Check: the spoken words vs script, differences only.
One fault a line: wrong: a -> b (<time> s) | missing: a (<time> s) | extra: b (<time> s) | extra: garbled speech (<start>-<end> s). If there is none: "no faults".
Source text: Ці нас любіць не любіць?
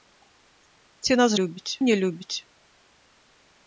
no faults